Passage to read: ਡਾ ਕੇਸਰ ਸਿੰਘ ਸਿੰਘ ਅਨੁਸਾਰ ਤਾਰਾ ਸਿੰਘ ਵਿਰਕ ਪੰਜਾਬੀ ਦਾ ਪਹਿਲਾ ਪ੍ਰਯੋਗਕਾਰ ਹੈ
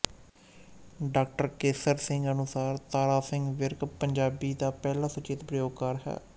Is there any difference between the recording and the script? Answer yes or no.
yes